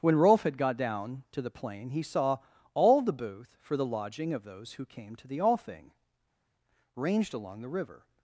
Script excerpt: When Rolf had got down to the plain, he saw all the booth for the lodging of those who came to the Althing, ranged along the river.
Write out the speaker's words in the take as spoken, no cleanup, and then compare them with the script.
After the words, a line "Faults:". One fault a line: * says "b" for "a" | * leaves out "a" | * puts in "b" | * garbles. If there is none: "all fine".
When Rolf had got down to the plain, he saw all the booth for the lodging of those who came to the Althing, ranged along the river.
Faults:
all fine